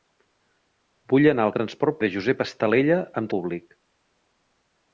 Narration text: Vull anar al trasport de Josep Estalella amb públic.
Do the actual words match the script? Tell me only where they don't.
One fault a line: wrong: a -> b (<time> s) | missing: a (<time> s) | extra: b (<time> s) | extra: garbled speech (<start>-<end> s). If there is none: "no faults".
no faults